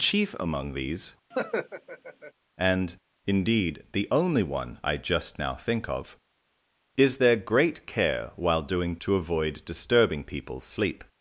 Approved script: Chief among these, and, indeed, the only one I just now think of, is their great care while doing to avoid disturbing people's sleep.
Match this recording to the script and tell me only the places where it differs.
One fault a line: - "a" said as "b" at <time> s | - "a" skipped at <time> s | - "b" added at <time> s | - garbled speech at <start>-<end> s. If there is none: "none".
none